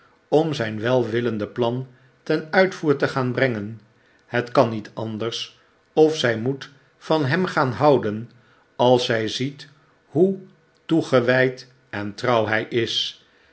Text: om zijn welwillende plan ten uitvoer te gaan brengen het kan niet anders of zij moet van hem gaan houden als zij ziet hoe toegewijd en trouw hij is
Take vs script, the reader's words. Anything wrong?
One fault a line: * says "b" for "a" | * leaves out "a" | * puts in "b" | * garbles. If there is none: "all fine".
all fine